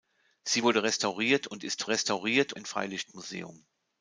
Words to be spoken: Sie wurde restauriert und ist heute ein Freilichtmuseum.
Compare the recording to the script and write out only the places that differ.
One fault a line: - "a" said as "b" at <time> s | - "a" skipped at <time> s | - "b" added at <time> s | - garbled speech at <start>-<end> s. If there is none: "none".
- "heute" said as "restauriert" at 1.9 s